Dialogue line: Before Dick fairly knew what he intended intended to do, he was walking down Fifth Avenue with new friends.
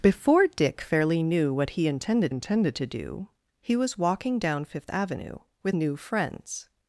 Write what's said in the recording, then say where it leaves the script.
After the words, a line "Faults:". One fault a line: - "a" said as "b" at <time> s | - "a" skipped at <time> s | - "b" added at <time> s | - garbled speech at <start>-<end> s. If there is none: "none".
Before Dick fairly knew what he intended intended to do, he was walking down Fifth Avenue with new friends.
Faults:
none